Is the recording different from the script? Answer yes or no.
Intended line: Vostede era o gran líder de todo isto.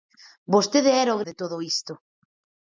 yes